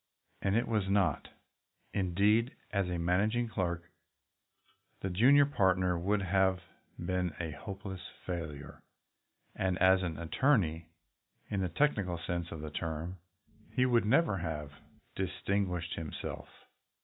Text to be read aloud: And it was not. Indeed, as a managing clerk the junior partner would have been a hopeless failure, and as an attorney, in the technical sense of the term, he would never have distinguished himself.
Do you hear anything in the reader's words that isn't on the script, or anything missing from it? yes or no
no